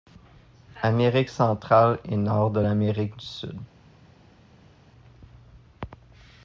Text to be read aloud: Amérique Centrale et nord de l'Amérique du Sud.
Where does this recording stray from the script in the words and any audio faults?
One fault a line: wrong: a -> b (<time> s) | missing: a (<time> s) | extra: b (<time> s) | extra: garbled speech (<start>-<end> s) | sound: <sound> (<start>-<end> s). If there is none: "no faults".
no faults